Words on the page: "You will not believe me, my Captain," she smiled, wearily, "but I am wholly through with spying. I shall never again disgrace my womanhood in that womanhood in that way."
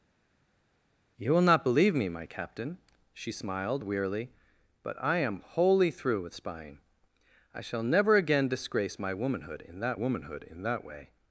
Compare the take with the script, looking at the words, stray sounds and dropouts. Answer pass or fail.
pass